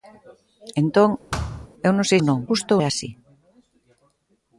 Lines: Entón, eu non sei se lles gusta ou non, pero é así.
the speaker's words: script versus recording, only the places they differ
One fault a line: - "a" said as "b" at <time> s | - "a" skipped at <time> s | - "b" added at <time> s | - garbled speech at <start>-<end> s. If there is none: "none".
- "se lles gusta" skipped at 2.2 s
- "pero" said as "gusta" at 2.5 s